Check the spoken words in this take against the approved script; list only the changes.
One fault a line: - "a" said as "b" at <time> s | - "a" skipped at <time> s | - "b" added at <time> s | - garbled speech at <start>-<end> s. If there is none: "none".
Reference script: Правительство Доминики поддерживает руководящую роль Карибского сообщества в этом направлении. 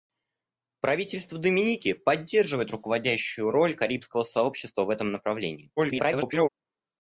- garbled speech at 5.8-6.5 s